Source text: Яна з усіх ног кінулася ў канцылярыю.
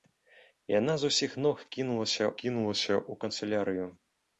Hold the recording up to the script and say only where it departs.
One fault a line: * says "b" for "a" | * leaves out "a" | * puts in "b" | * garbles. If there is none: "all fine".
* puts in "кінулася"